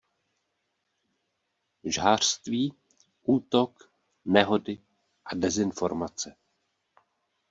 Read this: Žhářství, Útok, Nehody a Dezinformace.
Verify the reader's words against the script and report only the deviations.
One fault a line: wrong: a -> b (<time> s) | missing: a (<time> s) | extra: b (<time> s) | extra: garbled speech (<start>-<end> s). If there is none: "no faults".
no faults